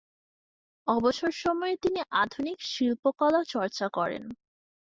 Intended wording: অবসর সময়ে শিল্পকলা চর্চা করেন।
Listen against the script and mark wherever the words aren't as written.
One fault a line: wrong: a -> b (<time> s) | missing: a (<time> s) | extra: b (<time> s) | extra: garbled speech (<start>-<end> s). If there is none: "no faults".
extra: তিনি আধুনিক (1.8 s)